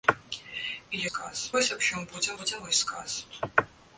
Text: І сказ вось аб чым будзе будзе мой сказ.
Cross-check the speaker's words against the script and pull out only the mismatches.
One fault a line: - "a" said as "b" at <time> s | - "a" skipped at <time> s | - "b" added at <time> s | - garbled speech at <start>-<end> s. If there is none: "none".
none